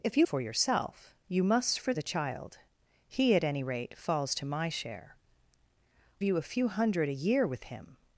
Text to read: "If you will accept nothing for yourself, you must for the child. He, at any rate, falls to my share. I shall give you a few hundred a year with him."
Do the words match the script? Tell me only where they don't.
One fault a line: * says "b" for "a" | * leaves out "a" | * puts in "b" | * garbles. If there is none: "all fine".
* leaves out "will accept nothing"
* leaves out "I shall give"